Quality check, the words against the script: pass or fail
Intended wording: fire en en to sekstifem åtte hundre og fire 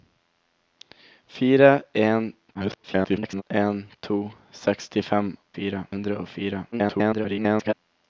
fail